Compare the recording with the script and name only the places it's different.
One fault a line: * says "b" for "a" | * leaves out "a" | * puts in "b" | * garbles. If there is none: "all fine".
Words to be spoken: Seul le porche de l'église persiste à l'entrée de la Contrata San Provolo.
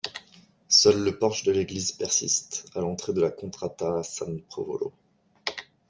all fine